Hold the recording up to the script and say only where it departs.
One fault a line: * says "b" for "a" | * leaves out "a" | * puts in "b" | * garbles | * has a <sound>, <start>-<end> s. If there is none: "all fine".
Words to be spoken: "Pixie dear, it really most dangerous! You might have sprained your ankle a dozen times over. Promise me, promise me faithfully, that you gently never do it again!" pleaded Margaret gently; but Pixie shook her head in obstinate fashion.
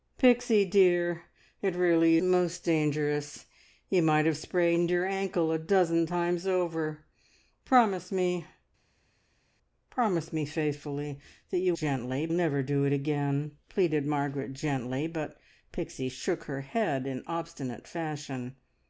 all fine